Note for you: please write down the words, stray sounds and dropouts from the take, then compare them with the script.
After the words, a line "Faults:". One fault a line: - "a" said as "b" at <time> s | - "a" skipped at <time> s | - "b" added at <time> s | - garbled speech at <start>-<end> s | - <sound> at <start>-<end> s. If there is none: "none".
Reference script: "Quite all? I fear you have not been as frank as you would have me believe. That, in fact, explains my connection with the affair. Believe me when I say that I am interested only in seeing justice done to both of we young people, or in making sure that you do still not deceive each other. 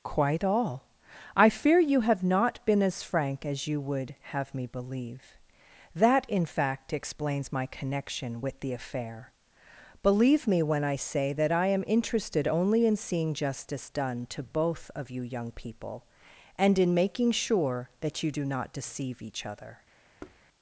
"Quite all? I fear you have not been as frank as you would have me believe. That, in fact, explains my connection with the affair. Believe me when I say that I am interested only in seeing justice done to both of you young people, and in making sure that you do not deceive each other.
Faults:
- "we" said as "you" at 15.1 s
- "or" said as "and" at 16.6 s
- "still" skipped at 18.4 s
- thud at 20.2-20.4 s